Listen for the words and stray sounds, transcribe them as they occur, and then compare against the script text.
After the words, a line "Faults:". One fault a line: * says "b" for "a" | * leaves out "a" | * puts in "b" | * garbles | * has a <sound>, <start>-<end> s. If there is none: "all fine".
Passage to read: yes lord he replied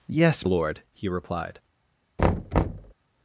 yes lord he replied
Faults:
* has a thud, 2.2-2.9 s